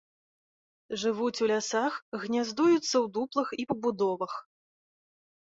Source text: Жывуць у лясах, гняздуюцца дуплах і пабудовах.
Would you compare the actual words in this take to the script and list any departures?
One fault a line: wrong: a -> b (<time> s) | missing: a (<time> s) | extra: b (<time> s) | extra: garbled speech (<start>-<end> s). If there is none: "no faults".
extra: ў (2.8 s)